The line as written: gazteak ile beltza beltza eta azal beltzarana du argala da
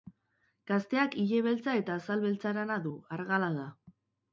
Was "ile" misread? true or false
false